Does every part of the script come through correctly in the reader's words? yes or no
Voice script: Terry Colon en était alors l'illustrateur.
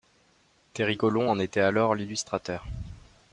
yes